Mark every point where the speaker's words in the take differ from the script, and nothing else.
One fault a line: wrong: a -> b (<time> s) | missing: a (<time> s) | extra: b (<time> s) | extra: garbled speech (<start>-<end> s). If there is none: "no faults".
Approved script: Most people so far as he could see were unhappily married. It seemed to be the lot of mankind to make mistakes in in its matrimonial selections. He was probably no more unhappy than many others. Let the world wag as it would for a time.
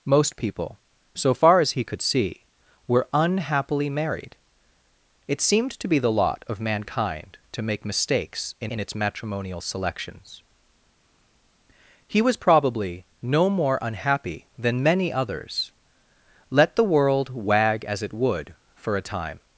no faults